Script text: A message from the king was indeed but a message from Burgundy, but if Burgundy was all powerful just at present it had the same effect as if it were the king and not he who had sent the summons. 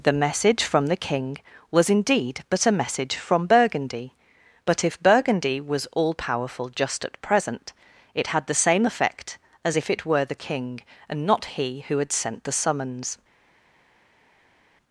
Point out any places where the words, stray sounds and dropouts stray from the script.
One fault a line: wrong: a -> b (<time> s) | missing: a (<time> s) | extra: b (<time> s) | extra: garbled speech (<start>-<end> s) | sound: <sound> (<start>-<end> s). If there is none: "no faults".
wrong: A -> The (0.0 s)